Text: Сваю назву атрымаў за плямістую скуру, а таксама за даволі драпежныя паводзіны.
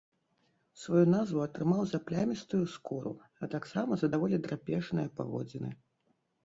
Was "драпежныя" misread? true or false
false